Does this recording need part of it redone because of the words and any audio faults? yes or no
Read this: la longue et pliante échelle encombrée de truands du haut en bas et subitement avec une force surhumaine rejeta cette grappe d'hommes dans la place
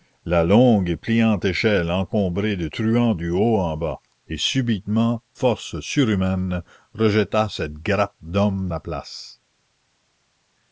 yes